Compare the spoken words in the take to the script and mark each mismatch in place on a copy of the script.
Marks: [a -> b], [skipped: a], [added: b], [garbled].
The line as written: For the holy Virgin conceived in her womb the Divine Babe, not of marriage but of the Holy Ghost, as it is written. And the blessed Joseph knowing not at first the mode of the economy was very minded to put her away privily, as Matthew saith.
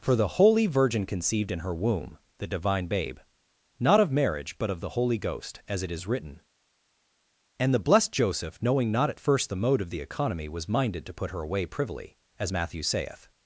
For the holy Virgin conceived in her womb the Divine Babe, not of marriage but of the Holy Ghost, as it is written. And the blessed Joseph knowing not at first the mode of the economy was [skipped: very] minded to put her away privily, as Matthew saith.